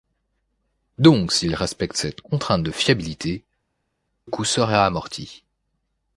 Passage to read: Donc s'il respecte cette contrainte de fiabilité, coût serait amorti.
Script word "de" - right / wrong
right